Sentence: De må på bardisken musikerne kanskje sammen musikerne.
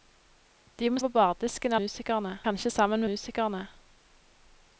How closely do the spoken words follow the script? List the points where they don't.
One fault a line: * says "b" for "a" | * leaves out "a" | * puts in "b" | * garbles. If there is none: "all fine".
all fine